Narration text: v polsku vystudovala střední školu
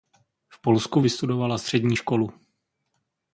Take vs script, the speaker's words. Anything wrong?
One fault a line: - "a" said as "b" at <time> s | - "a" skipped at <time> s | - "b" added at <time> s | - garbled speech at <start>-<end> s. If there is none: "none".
none